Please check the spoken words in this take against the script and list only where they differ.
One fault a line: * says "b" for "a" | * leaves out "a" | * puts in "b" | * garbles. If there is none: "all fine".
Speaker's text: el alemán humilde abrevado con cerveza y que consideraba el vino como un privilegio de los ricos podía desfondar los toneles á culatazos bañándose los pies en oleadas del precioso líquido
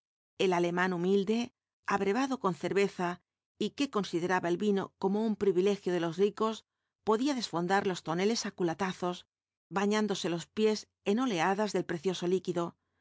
all fine